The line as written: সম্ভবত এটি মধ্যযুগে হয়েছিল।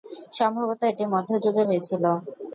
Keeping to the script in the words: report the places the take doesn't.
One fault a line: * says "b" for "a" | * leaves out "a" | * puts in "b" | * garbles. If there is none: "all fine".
all fine